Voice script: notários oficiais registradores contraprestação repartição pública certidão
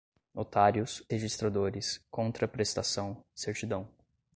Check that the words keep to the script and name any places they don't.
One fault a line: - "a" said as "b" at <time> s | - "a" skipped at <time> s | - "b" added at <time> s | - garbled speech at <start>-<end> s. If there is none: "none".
- "oficiais" skipped at 1.0 s
- "repartição pública" skipped at 3.2 s